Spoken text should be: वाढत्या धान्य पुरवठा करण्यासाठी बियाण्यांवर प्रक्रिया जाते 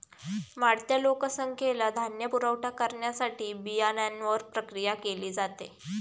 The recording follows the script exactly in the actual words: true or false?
false